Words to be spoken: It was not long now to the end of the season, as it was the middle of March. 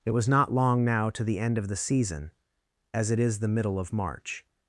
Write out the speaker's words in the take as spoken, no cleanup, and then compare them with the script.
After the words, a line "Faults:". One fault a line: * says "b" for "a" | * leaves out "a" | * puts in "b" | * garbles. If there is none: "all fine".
It was not long now to the end of the season, as it is the middle of March.
Faults:
* says "is" for "was"